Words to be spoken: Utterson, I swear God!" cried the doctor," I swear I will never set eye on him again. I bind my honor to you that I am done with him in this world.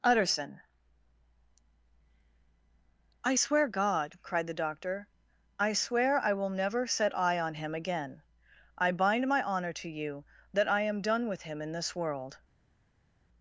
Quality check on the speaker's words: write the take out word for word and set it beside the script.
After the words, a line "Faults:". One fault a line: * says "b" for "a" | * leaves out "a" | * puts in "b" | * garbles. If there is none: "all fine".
Utterson, I swear God!" cried the doctor," I swear I will never set eye on him again. I bind my honor to you that I am done with him in this world.
Faults:
all fine